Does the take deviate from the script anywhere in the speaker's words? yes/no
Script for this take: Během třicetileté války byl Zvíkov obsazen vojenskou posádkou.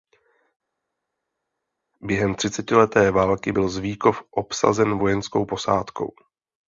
no